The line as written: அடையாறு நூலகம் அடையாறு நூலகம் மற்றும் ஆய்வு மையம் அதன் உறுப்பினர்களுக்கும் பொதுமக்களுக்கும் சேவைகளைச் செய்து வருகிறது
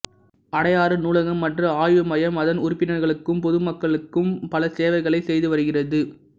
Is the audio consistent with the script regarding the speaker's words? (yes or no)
no